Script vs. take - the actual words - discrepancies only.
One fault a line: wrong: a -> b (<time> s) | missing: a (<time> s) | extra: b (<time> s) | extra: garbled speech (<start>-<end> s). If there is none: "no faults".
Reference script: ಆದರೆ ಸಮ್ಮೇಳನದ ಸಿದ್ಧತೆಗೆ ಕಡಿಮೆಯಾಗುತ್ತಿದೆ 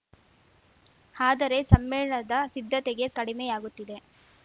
no faults